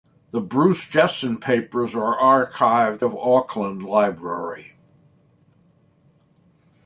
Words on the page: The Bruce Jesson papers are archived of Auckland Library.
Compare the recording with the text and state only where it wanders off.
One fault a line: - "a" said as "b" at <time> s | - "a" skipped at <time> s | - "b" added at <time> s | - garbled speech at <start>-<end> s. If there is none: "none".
none